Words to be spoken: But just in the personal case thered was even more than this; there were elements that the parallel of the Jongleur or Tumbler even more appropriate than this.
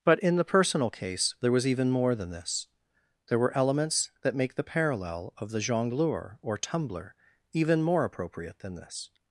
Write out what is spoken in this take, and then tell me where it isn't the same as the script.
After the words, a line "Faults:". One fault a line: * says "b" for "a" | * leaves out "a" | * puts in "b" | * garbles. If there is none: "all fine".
But in the personal case there was even more than this; there were elements that make the parallel of the Jongleur or Tumbler even more appropriate than this.
Faults:
* leaves out "just"
* says "there" for "thered"
* puts in "make"